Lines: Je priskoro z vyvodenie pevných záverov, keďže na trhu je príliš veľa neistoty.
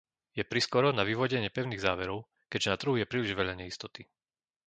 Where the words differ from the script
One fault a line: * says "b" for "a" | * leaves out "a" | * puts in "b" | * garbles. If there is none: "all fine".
* says "na" for "z"